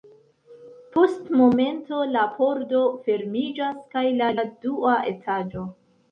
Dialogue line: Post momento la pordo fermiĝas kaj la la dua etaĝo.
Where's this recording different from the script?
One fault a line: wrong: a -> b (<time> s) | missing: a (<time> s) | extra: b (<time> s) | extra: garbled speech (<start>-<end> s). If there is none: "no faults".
no faults